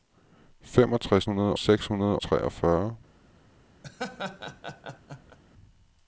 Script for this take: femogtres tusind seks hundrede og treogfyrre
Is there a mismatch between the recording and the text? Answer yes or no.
yes